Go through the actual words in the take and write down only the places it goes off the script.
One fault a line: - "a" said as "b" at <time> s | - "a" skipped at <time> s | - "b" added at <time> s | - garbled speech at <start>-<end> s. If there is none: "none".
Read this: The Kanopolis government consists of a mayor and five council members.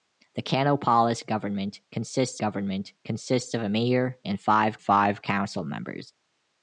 - "government consists" added at 2.4 s
- "five" added at 4.8 s